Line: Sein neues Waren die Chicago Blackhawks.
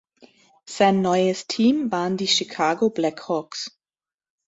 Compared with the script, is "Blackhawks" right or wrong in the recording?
right